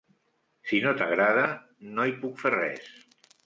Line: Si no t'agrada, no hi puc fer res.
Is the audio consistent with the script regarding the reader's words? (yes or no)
yes